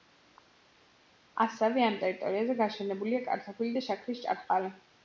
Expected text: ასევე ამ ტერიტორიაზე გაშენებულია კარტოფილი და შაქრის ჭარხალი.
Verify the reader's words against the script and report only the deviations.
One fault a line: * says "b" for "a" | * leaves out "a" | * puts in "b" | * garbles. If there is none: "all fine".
all fine